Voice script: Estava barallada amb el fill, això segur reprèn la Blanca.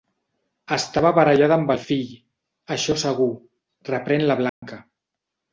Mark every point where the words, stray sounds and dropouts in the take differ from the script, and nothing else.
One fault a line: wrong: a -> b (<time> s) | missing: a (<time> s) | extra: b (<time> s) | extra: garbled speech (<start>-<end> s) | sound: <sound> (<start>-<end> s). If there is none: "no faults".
sound: dropout (4.5-4.6 s)